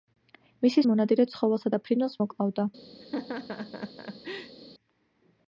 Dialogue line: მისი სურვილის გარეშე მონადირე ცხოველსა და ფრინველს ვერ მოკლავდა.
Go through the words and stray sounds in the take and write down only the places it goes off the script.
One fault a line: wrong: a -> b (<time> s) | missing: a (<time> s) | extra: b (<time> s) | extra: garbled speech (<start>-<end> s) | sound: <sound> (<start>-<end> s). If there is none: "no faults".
missing: სურვილის გარეშე (0.8 s)
missing: ვერ (2.2 s)
sound: laugh (3.0-4.6 s)